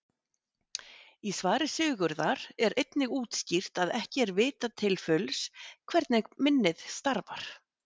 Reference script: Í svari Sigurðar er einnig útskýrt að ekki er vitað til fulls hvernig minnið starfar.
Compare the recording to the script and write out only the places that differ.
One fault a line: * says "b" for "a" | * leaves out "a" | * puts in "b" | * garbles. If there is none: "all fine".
all fine